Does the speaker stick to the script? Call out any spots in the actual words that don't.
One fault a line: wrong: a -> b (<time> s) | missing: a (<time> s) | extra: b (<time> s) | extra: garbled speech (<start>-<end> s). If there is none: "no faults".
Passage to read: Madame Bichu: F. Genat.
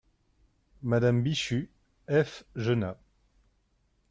no faults